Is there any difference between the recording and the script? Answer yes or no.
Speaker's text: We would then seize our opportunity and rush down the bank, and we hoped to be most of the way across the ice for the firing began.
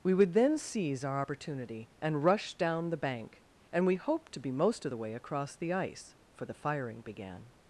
no